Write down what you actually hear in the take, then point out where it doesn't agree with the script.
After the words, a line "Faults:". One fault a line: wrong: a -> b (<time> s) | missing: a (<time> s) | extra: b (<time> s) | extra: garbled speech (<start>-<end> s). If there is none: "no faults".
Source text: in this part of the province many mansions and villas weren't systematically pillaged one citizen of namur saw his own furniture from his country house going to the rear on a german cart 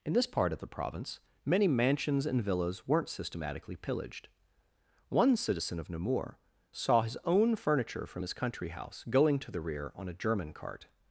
in this part of the province many mansions and villas weren't systematically pillaged one citizen of namur saw his own furniture from his country house going to the rear on a german cart
Faults:
no faults